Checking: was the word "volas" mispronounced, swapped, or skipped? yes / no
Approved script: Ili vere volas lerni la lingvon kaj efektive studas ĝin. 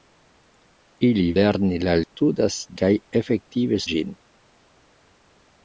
yes